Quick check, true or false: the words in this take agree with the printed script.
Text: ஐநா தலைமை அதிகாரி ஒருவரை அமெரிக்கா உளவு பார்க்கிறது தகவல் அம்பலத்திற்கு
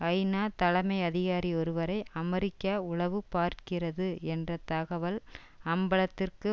false